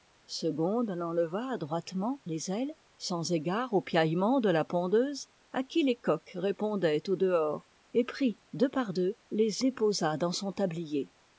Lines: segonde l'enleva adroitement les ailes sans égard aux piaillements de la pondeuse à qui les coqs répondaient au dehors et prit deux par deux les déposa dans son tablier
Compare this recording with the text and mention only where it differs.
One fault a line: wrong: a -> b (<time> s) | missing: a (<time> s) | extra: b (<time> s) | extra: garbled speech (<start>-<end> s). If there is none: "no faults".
no faults